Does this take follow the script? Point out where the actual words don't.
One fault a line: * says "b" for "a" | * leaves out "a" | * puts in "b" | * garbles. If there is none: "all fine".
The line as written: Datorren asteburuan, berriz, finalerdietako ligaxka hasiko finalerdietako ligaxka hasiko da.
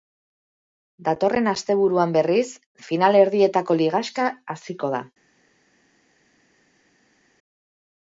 * leaves out "finalerdietako ligaxka hasiko"